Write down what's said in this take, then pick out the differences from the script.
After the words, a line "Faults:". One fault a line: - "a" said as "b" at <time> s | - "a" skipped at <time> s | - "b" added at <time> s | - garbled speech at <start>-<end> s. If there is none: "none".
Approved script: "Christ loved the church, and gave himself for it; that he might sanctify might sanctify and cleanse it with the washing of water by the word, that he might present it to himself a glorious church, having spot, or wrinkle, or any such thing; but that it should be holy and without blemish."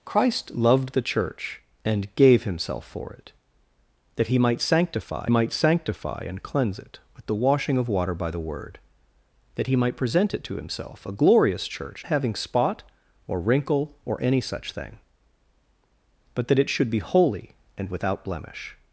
"Christ loved the church, and gave himself for it; that he might sanctify might sanctify and cleanse it with the washing of water by the word, that he might present it to himself a glorious church, having spot, or wrinkle, or any such thing; but that it should be holy and without blemish."
Faults:
none